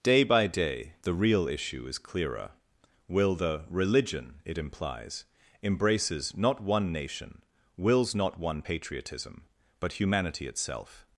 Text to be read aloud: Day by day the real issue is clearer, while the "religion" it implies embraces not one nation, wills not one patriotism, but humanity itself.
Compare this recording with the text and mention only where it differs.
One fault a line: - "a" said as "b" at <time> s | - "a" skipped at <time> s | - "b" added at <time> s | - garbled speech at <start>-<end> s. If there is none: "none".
- "while" said as "will" at 3.1 s